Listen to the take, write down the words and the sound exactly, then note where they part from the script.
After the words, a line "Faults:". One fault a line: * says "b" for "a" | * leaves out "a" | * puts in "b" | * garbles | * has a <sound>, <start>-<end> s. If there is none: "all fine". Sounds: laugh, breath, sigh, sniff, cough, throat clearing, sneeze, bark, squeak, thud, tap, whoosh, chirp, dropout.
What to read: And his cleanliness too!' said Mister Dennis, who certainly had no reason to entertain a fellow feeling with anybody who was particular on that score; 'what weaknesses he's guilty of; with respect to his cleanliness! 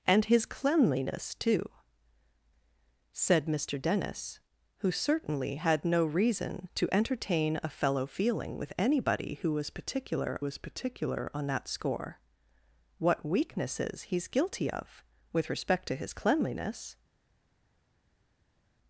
And his cleanliness too!' said Mister Dennis, who certainly had no reason to entertain a fellow feeling with anybody who was particular was particular on that score; 'what weaknesses he's guilty of; with respect to his cleanliness!
Faults:
* puts in "was particular"